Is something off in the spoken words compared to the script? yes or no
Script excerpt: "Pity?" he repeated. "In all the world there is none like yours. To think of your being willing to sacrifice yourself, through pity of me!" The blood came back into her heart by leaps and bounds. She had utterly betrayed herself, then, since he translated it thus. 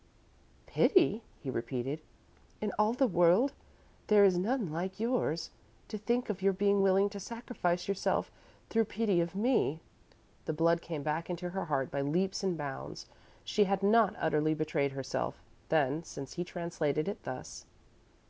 yes